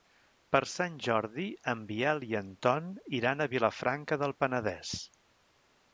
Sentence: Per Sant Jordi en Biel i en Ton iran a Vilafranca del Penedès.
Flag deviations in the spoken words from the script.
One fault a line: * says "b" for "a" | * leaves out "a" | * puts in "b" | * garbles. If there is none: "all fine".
all fine